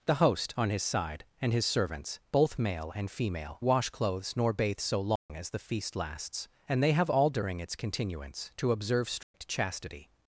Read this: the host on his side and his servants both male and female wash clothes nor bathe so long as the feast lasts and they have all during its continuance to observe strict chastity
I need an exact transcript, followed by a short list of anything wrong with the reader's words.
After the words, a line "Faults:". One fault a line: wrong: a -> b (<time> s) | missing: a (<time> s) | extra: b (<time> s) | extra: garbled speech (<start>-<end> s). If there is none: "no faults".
the host on his side and his servants both male and female wash clothes nor bathe so long as the feast lasts and they have all during its continuance to observe strict chastity
Faults:
no faults